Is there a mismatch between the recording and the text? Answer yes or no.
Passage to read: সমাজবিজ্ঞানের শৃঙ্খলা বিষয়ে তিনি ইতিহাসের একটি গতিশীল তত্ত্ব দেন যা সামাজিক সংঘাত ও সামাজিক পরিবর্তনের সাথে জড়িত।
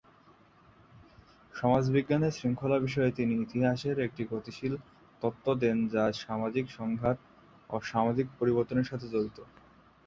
no